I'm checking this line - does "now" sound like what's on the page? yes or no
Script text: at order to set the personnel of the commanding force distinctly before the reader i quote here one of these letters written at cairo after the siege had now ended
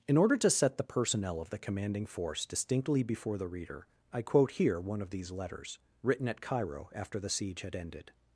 no